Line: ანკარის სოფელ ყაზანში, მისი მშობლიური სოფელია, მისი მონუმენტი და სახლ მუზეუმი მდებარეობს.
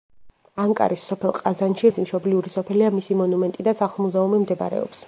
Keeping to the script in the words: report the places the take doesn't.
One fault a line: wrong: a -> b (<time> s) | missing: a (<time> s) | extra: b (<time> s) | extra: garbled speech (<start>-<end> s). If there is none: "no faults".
no faults